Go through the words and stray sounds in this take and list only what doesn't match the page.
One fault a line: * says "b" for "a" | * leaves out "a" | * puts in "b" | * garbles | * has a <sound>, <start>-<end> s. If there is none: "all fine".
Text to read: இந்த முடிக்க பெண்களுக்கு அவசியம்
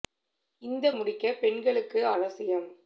all fine